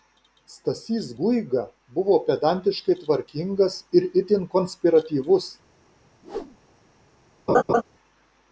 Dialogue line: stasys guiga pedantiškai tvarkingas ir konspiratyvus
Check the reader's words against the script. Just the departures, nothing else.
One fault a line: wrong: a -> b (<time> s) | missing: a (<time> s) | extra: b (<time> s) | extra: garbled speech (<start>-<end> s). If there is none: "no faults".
extra: buvo (2.0 s)
extra: itin (4.2 s)